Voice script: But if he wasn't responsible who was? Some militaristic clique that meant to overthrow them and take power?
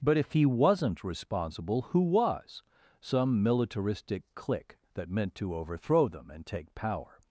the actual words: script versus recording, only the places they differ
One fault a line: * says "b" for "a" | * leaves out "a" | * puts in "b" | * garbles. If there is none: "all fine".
all fine